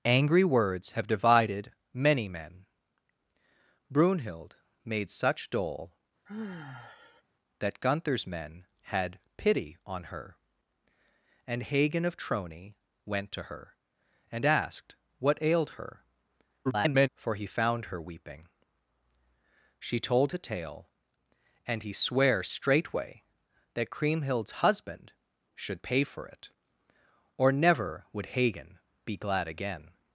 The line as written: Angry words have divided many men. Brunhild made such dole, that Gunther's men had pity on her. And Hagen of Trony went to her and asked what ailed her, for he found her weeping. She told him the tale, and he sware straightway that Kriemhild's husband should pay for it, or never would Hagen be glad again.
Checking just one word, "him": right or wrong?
wrong